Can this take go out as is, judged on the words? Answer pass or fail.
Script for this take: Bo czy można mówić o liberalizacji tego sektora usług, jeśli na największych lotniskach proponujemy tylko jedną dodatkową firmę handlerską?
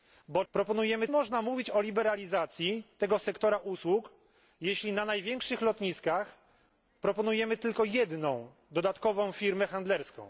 fail